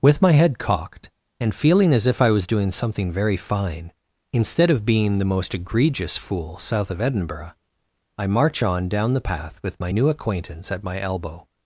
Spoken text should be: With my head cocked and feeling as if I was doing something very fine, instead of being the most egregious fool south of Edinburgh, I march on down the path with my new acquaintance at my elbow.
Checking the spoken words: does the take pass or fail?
pass